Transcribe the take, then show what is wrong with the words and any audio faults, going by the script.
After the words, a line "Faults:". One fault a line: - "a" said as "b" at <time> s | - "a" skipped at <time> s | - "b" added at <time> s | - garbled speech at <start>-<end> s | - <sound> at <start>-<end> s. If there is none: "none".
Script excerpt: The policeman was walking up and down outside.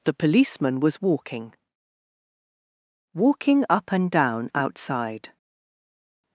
The policeman was walking walking up and down outside.
Faults:
- "walking" added at 3.1 s